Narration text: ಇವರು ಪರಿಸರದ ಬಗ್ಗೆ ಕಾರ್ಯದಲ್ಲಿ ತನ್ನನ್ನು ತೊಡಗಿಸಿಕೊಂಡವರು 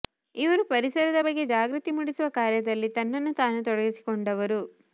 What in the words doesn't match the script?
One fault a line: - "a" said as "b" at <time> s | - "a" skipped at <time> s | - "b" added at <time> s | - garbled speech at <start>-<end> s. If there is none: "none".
- "ಜಾಗೃತಿ ಮೂಡಿಸುವ" added at 1.5 s
- "ತಾನು" added at 3.3 s